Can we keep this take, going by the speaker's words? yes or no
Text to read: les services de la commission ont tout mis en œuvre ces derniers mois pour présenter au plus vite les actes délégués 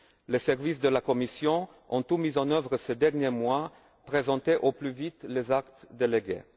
no